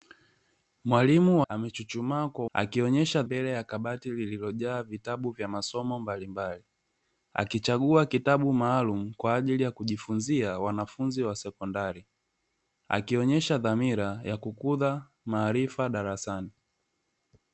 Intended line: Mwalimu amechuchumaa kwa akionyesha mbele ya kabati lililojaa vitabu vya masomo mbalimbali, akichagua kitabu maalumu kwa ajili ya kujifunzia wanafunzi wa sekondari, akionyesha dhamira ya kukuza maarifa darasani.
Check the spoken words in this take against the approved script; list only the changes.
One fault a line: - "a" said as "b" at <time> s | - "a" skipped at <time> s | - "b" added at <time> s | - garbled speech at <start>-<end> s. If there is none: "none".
none